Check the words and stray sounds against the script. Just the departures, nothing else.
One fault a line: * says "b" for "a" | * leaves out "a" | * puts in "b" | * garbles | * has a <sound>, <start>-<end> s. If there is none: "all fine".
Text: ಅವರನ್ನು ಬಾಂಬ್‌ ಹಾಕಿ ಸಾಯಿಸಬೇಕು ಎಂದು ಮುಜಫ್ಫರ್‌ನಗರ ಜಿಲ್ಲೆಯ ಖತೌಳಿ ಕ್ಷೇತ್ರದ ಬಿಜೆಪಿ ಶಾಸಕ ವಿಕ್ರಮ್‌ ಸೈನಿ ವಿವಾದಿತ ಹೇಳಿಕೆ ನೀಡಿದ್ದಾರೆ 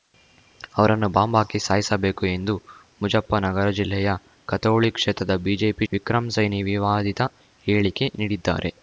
* leaves out "ಶಾಸಕ"